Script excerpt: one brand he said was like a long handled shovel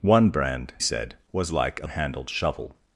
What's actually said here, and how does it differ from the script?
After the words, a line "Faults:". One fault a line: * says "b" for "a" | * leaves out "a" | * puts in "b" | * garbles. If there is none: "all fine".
one brand said was like a handled shovel
Faults:
* leaves out "he"
* leaves out "long"